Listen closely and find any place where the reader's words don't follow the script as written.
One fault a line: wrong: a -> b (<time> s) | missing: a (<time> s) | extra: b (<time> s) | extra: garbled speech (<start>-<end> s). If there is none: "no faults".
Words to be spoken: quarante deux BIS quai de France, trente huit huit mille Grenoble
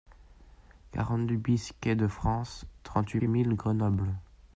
no faults